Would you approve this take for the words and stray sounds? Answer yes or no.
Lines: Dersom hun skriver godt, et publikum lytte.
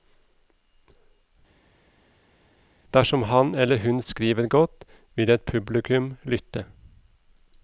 no